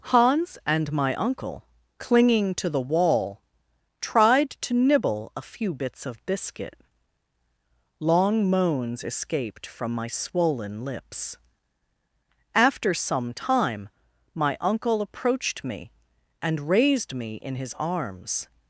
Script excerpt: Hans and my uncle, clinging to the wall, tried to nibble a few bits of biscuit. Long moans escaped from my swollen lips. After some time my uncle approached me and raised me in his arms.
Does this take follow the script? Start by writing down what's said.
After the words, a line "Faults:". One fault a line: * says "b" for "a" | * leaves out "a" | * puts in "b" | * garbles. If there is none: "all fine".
Hans and my uncle, clinging to the wall, tried to nibble a few bits of biscuit. Long moans escaped from my swollen lips. After some time my uncle approached me and raised me in his arms.
Faults:
all fine